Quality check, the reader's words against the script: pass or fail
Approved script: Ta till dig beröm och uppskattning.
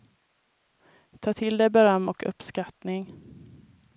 pass